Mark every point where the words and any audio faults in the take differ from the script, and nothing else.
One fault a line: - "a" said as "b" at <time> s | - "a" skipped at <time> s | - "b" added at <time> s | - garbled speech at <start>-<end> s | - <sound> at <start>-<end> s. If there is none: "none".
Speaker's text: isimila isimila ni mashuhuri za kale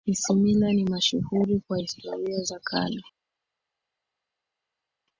- "isimila" skipped at 0.7 s
- "kwa historia" added at 1.7 s